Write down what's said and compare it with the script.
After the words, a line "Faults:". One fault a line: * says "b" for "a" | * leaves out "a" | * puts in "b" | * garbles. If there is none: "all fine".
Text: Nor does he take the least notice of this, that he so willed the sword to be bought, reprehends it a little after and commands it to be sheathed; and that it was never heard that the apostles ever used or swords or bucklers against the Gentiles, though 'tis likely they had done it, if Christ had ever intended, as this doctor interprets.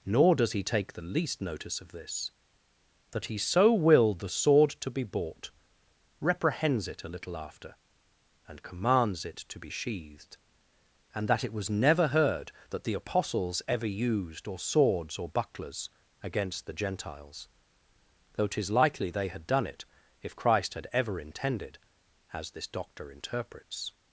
Nor does he take the least notice of this, that he so willed the sword to be bought, reprehends it a little after and commands it to be sheathed; and that it was never heard that the apostles ever used or swords or bucklers against the Gentiles, though 'tis likely they had done it, if Christ had ever intended, as this doctor interprets.
Faults:
all fine